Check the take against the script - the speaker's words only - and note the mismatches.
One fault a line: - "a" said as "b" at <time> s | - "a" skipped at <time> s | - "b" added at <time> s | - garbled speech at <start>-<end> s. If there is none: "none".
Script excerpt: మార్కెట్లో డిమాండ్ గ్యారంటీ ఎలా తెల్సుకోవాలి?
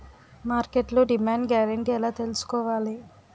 none